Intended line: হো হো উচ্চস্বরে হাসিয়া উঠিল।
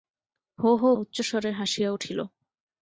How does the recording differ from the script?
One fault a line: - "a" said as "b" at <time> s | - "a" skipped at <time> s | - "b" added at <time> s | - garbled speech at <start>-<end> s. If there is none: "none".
none